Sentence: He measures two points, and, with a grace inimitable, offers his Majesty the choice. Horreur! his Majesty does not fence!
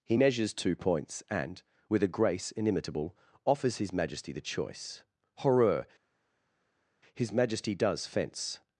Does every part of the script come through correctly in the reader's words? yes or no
no